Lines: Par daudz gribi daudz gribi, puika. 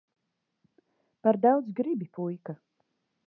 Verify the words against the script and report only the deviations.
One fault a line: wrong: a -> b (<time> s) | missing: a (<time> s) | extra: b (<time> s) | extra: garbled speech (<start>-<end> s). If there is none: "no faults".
missing: daudz gribi (2.1 s)